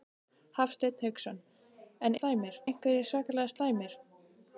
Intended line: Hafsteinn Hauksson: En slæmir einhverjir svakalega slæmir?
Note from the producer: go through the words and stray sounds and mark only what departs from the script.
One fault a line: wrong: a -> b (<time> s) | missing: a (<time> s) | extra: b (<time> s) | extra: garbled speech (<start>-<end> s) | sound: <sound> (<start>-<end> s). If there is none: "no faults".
no faults